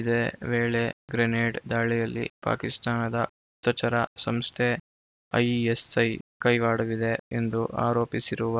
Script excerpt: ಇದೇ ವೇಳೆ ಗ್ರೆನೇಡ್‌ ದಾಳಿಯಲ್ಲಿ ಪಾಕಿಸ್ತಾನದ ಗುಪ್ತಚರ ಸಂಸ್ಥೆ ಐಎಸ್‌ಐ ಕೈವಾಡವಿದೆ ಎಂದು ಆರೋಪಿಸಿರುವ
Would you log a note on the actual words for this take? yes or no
no